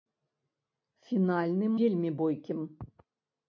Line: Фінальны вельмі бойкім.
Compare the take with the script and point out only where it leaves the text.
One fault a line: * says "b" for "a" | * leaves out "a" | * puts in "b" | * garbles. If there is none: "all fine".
all fine